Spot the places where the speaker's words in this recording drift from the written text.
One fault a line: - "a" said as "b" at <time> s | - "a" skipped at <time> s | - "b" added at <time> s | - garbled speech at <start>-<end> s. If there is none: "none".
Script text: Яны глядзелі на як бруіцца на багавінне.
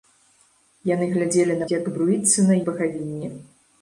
none